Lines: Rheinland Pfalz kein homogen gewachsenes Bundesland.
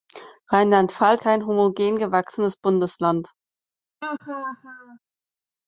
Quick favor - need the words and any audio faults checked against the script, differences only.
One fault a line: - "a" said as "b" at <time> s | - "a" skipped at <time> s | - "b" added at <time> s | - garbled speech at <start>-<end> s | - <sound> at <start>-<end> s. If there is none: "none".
- laugh at 4.0-5.0 s